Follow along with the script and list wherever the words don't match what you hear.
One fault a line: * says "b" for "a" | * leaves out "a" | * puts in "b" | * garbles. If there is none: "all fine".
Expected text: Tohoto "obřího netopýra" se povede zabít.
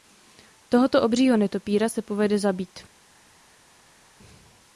all fine